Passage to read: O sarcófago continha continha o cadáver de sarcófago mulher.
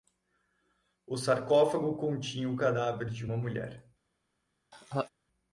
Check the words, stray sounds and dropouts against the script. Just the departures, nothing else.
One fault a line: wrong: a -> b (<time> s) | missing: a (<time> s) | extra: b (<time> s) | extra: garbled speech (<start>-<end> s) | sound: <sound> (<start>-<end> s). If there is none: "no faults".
missing: continha (2.5 s)
wrong: sarcófago -> uma (3.2 s)
sound: laugh (4.7-5.1 s)